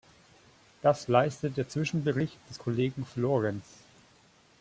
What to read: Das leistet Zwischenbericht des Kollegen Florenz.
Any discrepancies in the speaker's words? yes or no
yes